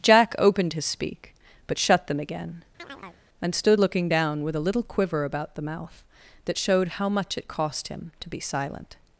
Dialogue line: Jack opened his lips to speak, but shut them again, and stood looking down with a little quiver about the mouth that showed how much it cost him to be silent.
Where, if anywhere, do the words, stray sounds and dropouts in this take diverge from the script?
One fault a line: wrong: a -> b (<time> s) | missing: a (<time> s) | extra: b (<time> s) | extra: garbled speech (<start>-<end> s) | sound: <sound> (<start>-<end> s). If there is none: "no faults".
missing: lips to (0.8 s)
sound: chirp (2.8-3.2 s)